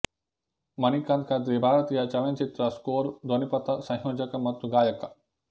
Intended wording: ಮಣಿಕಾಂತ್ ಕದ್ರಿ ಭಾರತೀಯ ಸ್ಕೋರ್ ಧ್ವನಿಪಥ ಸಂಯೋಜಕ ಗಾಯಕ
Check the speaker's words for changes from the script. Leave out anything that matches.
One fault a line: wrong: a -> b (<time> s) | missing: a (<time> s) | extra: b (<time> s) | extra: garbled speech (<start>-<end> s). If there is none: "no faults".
extra: ಚಲನಚಿತ್ರ (2.1 s)
extra: ಮತ್ತು (4.5 s)